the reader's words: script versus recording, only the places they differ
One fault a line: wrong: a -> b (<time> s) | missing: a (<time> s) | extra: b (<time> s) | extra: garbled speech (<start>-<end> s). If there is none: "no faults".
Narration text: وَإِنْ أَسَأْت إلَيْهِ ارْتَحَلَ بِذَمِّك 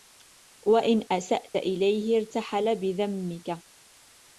no faults